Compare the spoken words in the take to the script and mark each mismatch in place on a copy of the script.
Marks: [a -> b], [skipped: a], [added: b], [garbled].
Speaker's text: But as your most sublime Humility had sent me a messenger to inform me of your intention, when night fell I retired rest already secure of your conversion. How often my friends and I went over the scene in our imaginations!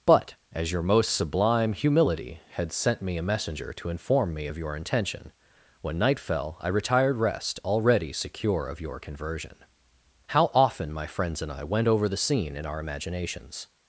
But as your most sublime Humility had sent me a messenger to inform me of your intention, when night fell I retired rest already secure of your conversion. How often my friends and I went over the scene in our imaginations!